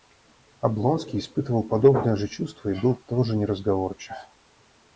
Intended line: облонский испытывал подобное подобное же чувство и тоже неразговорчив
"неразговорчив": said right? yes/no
yes